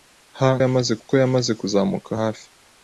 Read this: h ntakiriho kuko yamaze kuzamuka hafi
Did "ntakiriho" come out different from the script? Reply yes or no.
yes